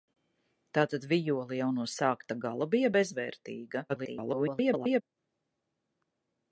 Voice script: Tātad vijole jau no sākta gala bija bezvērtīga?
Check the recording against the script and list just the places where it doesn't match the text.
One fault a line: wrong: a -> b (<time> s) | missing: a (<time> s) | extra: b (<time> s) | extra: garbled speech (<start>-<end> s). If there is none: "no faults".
extra: garbled speech (3.9-5.0 s)